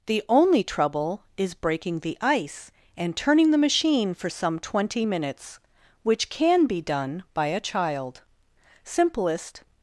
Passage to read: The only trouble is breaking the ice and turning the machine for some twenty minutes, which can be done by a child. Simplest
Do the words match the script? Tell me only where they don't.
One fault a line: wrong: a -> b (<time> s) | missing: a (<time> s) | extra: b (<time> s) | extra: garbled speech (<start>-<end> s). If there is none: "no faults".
no faults